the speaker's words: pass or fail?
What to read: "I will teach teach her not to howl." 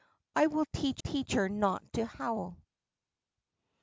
pass